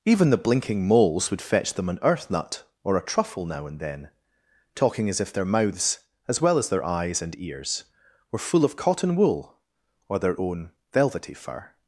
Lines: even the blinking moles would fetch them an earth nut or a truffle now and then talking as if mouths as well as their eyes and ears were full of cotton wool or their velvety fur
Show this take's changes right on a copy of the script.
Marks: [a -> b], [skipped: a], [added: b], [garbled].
even the blinking moles would fetch them an earth nut or a truffle now and then talking as if [added: their] mouths as well as their eyes and ears were full of cotton wool or their [added: own] velvety fur